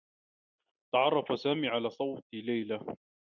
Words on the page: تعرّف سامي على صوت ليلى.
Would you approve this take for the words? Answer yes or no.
yes